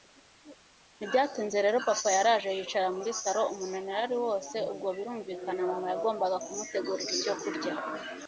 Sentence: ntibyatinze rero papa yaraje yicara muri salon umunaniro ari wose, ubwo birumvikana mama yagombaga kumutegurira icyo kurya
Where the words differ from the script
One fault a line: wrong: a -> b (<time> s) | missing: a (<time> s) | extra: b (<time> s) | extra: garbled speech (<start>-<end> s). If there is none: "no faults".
no faults